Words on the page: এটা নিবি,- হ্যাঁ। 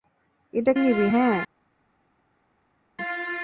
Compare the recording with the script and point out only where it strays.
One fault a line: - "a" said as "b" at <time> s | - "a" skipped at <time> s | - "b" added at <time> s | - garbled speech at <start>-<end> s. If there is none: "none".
none